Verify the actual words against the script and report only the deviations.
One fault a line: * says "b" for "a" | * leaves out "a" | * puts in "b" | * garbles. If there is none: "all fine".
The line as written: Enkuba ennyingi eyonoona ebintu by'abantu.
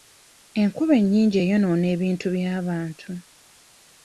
all fine